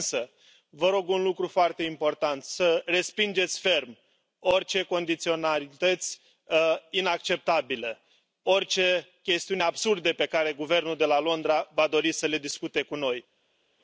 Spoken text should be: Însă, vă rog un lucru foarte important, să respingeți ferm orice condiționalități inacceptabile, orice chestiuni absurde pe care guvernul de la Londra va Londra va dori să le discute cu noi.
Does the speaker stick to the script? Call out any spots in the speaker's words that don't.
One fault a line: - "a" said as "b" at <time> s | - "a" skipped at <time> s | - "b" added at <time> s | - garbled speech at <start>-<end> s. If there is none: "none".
- "Londra va" skipped at 11.9 s